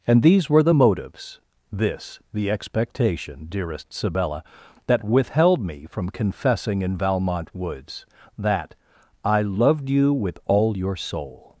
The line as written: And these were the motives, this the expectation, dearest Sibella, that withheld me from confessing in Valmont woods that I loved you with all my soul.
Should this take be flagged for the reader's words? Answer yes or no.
yes